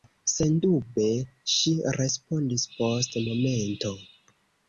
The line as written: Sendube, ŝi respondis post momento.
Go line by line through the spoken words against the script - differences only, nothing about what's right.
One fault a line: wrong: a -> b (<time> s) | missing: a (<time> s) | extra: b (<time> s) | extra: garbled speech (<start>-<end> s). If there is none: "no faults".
no faults